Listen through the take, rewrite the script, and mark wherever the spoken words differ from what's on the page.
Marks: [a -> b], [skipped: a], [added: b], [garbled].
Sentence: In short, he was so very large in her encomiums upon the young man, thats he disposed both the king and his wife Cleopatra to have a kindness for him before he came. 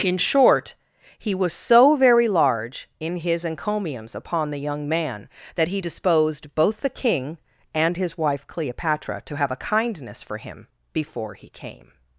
In short, he was so very large in [her -> his] encomiums upon the young man, [thats -> that] he disposed both the king and his wife Cleopatra to have a kindness for him before he came.